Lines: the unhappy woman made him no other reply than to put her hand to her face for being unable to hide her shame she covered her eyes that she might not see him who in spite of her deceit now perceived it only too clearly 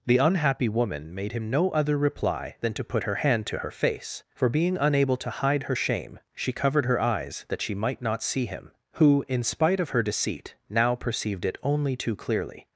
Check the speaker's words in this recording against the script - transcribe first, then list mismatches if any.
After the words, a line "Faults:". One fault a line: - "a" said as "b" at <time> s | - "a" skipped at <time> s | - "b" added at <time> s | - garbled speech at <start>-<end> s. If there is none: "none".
the unhappy woman made him no other reply than to put her hand to her face for being unable to hide her shame she covered her eyes that she might not see him who in spite of her deceit now perceived it only too clearly
Faults:
none